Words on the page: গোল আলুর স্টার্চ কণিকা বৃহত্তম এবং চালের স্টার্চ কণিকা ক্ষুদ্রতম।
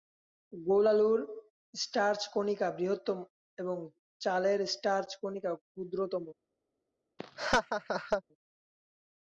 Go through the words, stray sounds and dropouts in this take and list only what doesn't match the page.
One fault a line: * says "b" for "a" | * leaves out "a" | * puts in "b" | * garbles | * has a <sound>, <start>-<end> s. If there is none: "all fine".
* has a laugh, 7.2-8.2 s